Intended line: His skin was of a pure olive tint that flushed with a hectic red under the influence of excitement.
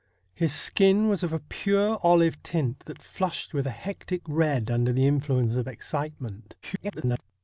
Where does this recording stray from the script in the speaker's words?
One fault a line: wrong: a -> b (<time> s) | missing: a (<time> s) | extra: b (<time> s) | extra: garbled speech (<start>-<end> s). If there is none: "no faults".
extra: garbled speech (6.6-7.2 s)